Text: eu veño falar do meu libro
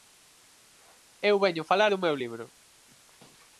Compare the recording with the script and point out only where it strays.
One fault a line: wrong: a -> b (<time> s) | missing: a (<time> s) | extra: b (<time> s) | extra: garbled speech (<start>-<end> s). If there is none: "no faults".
no faults